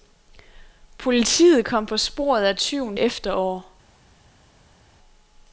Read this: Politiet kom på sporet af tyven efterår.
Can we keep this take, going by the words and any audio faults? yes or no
yes